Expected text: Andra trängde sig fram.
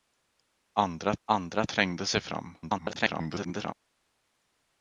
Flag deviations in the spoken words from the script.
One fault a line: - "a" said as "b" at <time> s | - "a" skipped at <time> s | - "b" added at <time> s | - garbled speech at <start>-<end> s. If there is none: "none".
- "andra" added at 1.3 s
- garbled speech at 2.6-3.7 s